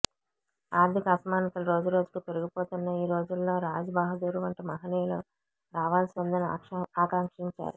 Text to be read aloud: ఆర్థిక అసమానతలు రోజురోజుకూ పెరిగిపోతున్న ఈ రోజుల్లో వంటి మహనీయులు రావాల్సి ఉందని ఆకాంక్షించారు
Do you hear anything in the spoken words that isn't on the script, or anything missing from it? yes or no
yes